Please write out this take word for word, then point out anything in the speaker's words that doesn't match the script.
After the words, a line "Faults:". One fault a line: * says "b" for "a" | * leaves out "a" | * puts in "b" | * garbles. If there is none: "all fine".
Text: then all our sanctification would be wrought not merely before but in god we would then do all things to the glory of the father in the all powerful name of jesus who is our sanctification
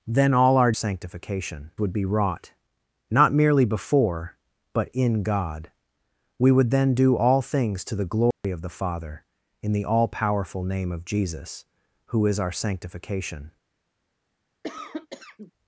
then all our sanctification would be wrought not merely before but in god we would then do all things to the glory of the father in the all powerful name of jesus who is our sanctification
Faults:
all fine